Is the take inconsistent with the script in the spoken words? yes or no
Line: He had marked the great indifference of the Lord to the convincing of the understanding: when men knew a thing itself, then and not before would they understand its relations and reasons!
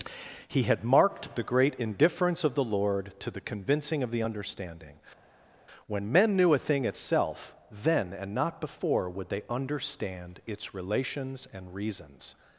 no